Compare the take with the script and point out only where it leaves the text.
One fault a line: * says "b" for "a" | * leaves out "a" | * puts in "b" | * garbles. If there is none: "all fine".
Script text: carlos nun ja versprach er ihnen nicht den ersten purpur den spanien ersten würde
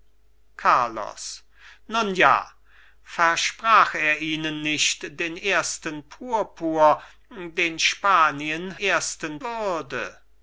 all fine